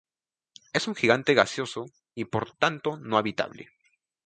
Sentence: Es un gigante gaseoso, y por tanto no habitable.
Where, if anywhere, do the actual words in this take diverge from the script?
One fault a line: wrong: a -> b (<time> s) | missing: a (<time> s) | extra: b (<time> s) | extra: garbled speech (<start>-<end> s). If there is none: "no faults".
no faults